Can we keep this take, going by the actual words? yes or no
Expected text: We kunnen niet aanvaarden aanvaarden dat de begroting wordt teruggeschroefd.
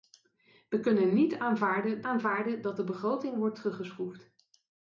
yes